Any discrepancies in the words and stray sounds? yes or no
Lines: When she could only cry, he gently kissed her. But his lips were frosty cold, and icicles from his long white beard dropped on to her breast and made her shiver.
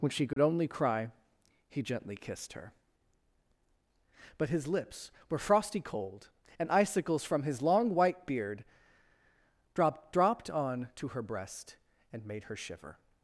yes